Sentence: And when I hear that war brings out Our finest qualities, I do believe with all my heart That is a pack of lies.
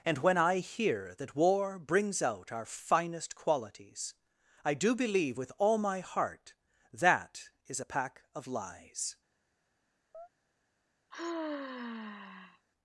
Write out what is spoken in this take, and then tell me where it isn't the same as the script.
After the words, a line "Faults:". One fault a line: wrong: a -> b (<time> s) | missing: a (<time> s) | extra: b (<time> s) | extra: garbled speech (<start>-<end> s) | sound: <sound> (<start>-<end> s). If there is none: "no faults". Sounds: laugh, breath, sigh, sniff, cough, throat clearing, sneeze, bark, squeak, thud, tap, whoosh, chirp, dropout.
And when I hear that war brings out Our finest qualities, I do believe with all my heart That is a pack of lies.
Faults:
sound: chirp (10.1-10.3 s)
sound: sigh (11.1-12.7 s)